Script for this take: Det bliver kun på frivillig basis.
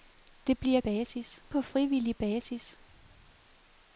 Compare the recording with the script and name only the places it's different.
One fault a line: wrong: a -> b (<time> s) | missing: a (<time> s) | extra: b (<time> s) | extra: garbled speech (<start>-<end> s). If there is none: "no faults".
wrong: kun -> basis (0.8 s)